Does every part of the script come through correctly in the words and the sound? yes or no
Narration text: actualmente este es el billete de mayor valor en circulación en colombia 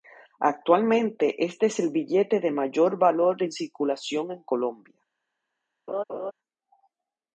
no